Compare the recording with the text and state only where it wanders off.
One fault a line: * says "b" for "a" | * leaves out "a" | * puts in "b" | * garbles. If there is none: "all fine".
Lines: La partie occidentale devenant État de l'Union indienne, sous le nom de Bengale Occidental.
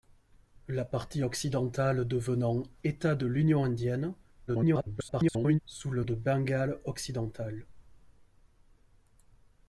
* garbles
* leaves out "nom"